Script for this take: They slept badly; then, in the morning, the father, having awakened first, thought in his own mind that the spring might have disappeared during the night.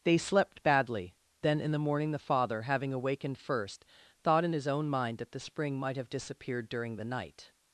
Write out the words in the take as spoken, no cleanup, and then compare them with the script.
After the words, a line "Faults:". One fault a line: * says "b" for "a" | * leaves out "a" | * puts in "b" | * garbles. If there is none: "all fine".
They slept badly; then, in the morning, the father, having awakened first, thought in his own mind that the spring might have disappeared during the night.
Faults:
all fine